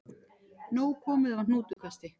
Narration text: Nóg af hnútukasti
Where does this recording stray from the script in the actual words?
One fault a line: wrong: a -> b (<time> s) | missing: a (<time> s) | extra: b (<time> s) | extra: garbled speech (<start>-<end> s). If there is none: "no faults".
extra: komið (1.1 s)